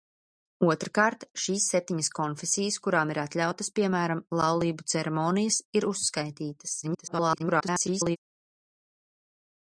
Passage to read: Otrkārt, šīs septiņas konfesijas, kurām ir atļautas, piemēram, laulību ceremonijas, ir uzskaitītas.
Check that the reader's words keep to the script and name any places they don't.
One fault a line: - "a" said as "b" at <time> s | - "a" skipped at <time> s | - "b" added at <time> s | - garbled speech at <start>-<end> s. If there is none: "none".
- garbled speech at 6.8-8.2 s